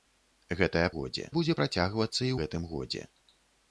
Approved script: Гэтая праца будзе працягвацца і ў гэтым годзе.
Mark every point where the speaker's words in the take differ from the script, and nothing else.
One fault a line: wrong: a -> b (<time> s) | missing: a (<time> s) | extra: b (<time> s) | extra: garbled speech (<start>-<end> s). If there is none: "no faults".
wrong: праца -> годзе (1.0 s)
missing: ў (2.3 s)